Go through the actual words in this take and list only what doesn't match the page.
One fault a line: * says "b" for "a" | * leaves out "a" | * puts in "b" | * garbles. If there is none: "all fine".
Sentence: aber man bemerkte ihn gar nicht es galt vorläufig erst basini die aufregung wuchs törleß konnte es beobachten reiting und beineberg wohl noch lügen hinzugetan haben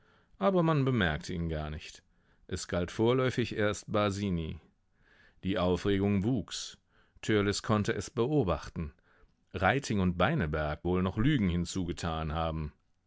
all fine